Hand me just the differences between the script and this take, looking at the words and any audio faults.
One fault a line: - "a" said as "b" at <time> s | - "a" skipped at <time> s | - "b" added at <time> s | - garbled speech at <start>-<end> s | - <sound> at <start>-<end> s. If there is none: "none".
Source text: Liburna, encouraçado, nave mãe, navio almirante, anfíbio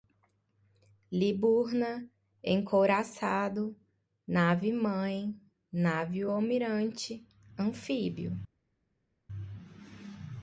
none